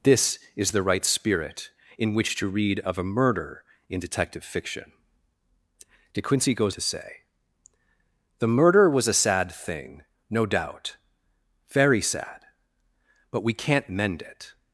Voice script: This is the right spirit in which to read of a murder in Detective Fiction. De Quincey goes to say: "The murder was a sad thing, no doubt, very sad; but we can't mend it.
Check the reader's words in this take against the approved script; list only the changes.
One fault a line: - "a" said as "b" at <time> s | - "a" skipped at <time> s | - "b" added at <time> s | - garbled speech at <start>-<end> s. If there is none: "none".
none